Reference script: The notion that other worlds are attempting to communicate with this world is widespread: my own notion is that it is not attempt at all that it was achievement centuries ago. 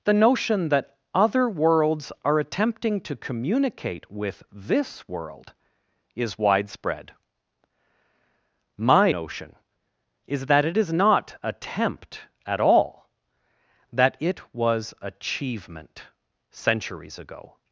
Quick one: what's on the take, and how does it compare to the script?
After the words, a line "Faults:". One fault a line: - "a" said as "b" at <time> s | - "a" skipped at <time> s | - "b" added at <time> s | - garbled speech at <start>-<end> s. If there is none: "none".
The notion that other worlds are attempting to communicate with this world is widespread: my notion is that it is not attempt at all that it was achievement centuries ago.
Faults:
- "own" skipped at 9.1 s